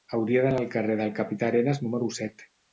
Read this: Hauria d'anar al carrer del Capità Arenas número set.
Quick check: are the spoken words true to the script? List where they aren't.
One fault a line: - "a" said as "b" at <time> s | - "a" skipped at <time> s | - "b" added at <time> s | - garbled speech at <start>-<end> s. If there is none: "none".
none